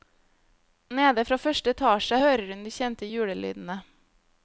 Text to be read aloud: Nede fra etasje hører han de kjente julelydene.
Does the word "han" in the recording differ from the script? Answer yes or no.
yes